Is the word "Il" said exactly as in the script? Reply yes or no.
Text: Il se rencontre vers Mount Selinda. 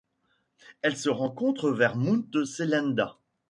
no